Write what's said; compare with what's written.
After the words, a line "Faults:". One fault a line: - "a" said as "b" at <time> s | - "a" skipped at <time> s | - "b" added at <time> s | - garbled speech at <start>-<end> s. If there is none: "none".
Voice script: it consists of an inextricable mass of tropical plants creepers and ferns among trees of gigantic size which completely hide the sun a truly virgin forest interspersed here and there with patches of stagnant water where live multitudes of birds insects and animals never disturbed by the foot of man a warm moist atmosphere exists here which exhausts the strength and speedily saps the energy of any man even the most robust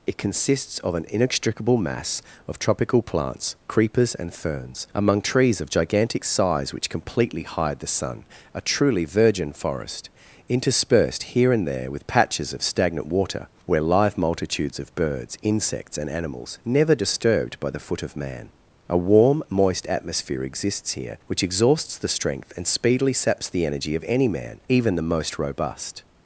it consists of an inextricable mass of tropical plants creepers and ferns among trees of gigantic size which completely hide the sun a truly virgin forest interspersed here and there with patches of stagnant water where live multitudes of birds insects and animals never disturbed by the foot of man a warm moist atmosphere exists here which exhausts the strength and speedily saps the energy of any man even the most robust
Faults:
none